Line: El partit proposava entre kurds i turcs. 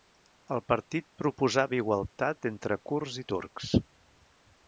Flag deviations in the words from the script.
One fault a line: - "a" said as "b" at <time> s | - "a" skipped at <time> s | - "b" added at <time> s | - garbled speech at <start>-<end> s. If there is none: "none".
- "igualtat" added at 1.8 s